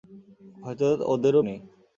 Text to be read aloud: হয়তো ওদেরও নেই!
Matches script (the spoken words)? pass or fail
pass